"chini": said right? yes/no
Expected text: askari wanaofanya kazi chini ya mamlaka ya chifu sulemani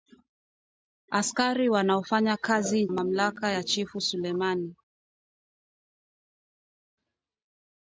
no